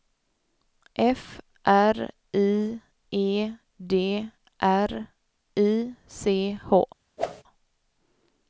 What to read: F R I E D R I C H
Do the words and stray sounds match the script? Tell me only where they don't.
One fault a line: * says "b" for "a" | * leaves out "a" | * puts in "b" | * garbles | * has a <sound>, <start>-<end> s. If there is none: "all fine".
* has a whoosh, 7.2-7.4 s